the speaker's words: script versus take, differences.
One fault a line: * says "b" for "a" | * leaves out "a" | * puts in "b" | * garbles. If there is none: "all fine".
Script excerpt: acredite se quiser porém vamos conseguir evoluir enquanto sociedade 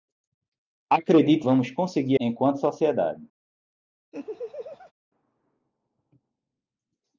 * leaves out "se quiser porém"
* leaves out "evoluir"